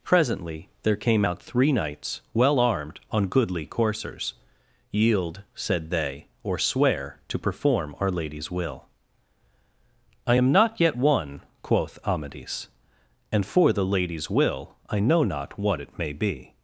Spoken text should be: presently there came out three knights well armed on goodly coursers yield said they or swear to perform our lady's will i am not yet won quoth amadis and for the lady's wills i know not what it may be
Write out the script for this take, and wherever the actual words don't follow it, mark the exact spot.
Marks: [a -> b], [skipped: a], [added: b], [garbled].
presently there came out three knights well armed on goodly coursers yield said they or swear to perform our lady's will i am not yet won quoth amadis and for the lady's [wills -> will] i know not what it may be